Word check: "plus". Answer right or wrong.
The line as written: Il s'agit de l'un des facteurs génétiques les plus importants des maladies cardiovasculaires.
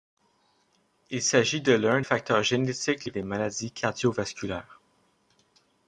wrong